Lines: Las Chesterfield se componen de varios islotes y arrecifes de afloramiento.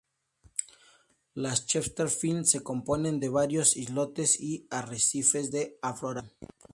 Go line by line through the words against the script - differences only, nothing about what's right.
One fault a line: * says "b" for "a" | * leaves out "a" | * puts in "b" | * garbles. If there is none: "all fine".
all fine